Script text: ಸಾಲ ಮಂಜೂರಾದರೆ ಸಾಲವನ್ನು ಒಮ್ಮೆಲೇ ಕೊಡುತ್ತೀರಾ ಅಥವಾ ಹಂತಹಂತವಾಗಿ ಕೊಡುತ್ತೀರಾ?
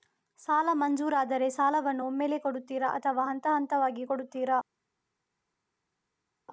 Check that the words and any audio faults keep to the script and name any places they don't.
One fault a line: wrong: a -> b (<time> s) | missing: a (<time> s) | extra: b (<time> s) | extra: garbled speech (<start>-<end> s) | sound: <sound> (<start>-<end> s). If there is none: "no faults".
no faults